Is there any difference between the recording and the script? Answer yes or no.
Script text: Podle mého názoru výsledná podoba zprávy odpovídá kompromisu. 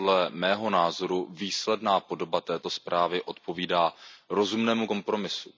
yes